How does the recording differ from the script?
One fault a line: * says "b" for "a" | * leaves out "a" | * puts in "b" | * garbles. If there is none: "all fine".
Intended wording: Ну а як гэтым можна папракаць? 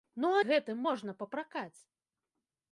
* leaves out "як"